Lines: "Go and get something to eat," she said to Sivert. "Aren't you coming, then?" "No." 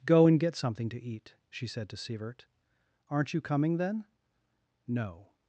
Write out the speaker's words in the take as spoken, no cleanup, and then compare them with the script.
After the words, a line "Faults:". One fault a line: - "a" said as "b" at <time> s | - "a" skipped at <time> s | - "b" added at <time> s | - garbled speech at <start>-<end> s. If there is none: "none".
"Go and get something to eat," she said to Sivert. "Aren't you coming, then?" "No."
Faults:
none